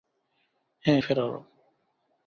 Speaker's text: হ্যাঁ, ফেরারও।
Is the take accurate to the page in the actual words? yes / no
yes